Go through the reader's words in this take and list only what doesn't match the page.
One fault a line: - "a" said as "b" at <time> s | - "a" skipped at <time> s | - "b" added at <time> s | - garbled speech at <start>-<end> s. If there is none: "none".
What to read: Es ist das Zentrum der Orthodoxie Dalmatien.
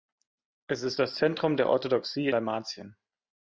none